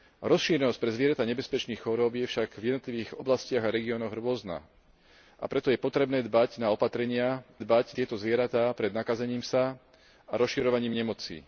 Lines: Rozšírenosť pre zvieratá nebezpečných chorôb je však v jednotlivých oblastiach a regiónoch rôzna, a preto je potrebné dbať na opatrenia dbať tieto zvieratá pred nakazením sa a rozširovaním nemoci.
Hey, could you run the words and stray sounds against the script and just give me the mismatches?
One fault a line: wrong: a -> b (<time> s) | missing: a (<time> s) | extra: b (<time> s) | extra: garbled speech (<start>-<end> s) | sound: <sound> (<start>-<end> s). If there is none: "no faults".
no faults